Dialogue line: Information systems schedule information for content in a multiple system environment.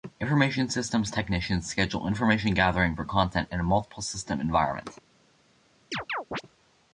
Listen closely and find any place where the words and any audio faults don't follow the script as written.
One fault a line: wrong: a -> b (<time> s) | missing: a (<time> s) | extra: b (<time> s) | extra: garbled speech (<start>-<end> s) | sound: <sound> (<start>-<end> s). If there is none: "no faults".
extra: technicians (1.1 s)
extra: gathering (2.5 s)
sound: chirp (5.9-6.4 s)